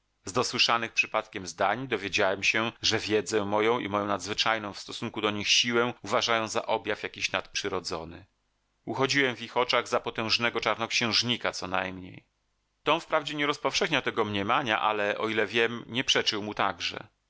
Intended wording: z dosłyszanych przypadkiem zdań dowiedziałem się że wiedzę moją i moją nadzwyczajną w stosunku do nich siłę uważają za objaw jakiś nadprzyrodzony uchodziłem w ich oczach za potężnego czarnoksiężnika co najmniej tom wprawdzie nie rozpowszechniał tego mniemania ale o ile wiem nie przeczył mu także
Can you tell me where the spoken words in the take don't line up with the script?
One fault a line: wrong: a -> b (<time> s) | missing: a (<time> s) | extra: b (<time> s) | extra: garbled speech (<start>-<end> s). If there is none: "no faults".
no faults